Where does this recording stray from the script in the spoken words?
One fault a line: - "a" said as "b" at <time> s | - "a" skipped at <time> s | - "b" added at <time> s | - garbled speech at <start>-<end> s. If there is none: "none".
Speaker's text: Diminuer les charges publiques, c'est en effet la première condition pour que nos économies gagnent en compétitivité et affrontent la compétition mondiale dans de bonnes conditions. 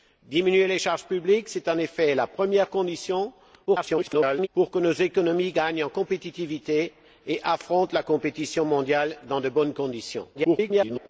- garbled speech at 3.7-4.5 s
- garbled speech at 10.3-11.1 s